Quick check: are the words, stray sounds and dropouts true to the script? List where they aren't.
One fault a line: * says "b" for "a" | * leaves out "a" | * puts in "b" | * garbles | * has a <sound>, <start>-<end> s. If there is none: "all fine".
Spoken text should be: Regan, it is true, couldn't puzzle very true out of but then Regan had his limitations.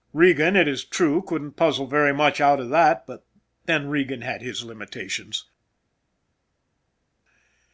* says "much" for "true"
* puts in "that"